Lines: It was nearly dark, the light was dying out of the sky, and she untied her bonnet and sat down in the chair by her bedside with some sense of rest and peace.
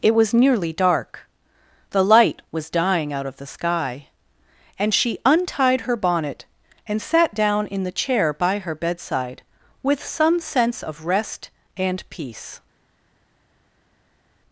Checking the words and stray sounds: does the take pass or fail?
pass